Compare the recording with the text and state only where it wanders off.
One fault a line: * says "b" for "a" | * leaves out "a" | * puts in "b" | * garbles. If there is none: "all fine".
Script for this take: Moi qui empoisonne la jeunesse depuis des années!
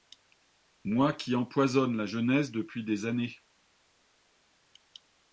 all fine